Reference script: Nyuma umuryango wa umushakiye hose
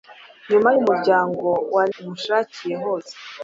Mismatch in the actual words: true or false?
false